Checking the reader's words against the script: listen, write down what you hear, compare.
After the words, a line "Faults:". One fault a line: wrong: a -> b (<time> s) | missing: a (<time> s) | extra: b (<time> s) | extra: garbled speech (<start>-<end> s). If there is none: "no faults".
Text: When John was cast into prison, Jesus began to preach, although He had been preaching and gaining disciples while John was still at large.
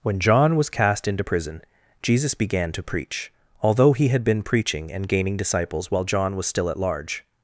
When John was cast into prison, Jesus began to preach, although He had been preaching and gaining disciples while John was still at large.
Faults:
no faults